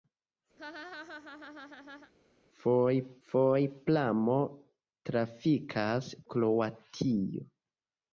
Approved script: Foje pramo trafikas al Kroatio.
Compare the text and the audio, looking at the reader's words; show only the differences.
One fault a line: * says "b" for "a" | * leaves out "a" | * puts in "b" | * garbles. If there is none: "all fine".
* puts in "foje"
* leaves out "al"